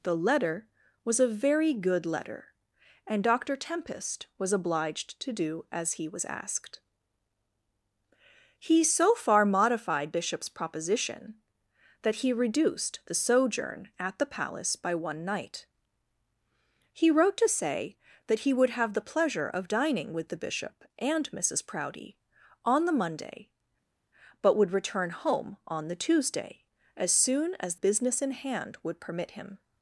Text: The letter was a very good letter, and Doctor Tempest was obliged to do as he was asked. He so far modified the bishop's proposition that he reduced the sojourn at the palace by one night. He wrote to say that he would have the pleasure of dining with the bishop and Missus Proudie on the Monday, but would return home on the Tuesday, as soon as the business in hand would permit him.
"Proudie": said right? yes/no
yes